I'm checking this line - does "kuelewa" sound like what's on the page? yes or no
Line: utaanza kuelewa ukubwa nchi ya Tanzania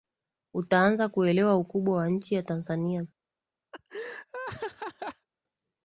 yes